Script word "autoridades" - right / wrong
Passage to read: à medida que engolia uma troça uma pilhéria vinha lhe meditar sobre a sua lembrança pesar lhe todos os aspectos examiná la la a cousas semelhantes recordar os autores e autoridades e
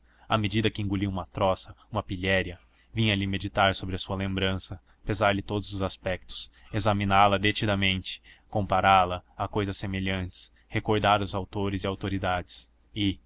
right